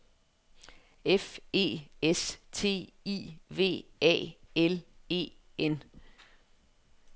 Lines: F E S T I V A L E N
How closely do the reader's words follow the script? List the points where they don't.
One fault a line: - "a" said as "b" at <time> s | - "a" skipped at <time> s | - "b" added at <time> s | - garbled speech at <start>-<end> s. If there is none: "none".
none